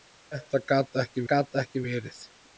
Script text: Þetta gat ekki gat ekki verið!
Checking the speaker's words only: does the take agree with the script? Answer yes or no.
yes